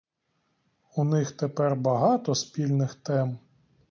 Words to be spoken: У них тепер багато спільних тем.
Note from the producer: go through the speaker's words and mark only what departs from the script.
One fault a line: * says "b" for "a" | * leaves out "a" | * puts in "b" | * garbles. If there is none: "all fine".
all fine